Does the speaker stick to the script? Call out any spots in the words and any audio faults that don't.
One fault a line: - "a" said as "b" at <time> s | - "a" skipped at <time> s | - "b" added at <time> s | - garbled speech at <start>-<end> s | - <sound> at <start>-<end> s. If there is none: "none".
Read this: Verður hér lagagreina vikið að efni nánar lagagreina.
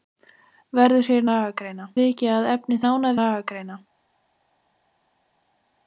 none